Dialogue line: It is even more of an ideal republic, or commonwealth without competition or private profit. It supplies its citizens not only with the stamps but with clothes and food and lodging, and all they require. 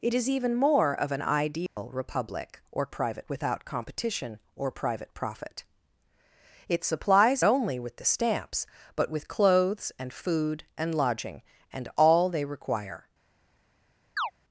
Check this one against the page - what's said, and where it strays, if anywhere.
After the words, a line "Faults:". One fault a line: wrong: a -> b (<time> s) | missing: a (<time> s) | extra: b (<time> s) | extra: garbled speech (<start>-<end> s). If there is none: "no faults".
It is even more of an ideal republic, or private without competition or private profit. It supplies only with the stamps but with clothes and food and lodging, and all they require.
Faults:
wrong: commonwealth -> private (2.9 s)
missing: its citizens not (7.4 s)